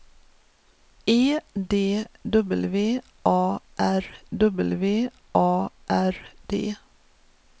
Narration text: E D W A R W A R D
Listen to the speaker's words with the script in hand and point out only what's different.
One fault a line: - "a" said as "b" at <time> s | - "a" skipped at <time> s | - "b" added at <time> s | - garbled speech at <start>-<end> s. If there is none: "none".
none